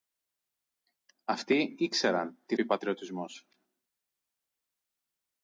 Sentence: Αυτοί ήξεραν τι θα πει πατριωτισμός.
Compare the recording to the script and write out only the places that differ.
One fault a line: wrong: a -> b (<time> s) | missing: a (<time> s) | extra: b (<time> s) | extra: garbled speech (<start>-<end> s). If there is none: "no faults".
missing: θα (2.6 s)